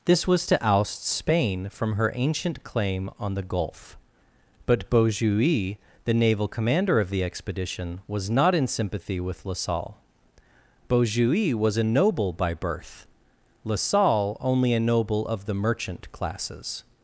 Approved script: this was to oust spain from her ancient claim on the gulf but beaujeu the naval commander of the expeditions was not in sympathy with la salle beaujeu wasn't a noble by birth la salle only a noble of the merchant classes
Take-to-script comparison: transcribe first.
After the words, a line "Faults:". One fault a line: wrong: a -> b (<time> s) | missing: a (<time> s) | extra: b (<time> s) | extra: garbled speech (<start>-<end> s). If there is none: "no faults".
this was to oust spain from her ancient claim on the gulf but beaujeu the naval commander of the expedition was not in sympathy with la salle beaujeu was a noble by birth la salle only a noble of the merchant classes
Faults:
wrong: expeditions -> expedition (7.2 s)
wrong: wasn't -> was (11.6 s)